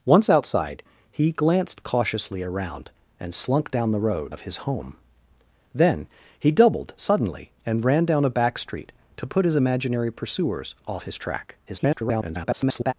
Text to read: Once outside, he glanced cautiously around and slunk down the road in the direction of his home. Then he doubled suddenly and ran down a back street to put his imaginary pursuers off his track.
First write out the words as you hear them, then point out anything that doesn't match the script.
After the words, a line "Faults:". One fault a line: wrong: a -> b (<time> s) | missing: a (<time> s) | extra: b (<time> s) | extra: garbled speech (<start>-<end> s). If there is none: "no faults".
Once outside, he glanced cautiously around and slunk down the road of his home. Then he doubled suddenly and ran down a back street to put his imaginary pursuers off his track. [garbled]
Faults:
missing: in the direction (4.3 s)
extra: garbled speech (11.7-12.9 s)